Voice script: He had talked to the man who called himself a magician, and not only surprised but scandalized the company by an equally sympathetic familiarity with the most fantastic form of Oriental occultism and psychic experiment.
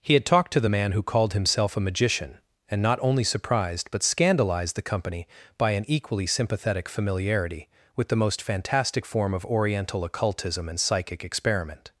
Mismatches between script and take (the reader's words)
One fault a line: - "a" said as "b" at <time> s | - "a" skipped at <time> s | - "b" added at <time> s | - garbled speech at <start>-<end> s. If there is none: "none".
none